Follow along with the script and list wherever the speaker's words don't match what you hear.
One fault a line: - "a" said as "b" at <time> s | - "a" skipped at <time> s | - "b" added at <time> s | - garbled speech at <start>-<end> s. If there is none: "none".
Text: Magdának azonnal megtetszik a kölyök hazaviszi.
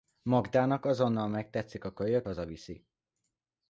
none